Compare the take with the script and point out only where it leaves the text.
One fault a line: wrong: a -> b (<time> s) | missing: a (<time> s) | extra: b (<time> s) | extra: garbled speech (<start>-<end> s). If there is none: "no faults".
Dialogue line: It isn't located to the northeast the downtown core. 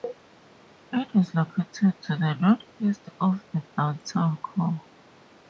wrong: isn't -> is (1.1 s)
extra: of (3.2 s)